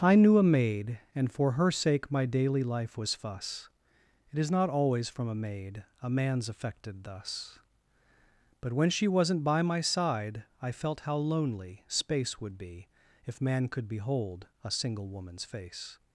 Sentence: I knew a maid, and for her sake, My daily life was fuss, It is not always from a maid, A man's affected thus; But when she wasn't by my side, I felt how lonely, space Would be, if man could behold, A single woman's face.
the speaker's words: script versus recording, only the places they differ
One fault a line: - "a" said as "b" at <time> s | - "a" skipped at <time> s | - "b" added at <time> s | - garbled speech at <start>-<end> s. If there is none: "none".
none